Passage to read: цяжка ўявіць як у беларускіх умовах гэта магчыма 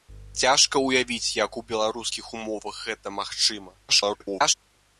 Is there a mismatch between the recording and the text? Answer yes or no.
yes